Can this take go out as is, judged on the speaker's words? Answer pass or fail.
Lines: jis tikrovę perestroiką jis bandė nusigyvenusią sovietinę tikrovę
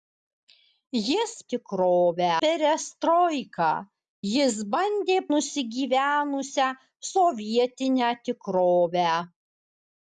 pass